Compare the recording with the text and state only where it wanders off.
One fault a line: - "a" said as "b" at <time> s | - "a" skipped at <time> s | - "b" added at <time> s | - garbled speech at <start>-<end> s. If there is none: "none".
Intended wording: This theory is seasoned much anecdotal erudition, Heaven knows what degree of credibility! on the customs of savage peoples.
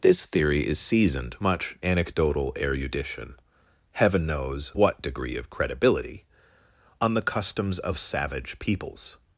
none